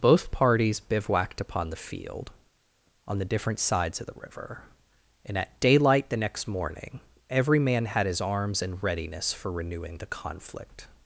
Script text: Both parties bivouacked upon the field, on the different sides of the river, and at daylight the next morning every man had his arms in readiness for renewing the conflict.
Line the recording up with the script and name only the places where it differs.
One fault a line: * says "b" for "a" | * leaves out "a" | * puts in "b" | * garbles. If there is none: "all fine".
all fine